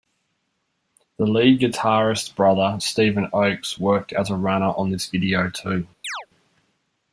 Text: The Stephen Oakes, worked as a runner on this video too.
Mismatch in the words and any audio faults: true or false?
true